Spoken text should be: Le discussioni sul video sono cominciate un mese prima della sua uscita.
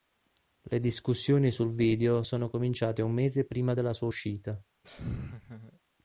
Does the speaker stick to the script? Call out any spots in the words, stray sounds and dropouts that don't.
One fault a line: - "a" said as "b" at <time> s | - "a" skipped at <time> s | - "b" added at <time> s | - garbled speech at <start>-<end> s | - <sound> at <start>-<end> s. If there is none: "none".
- laugh at 4.8-5.8 s